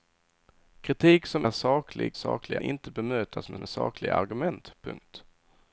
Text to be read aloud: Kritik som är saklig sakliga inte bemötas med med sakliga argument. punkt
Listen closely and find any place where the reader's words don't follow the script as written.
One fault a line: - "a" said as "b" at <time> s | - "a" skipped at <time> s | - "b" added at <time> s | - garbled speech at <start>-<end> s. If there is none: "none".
none